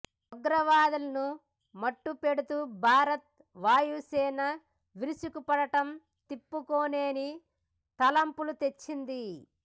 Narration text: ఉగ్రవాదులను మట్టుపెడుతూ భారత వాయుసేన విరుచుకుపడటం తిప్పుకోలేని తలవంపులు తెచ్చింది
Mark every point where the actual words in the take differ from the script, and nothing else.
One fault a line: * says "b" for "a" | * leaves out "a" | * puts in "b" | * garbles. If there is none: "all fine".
all fine